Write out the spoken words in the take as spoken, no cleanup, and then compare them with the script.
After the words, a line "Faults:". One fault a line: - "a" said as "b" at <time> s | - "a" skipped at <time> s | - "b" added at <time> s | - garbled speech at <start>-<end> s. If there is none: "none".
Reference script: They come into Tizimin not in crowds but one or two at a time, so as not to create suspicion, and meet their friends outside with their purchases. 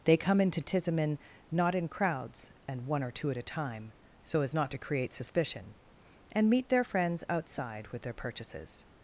They come into Tizimin not in crowds and one or two at a time, so as not to create suspicion, and meet their friends outside with their purchases.
Faults:
- "but" said as "and" at 2.7 s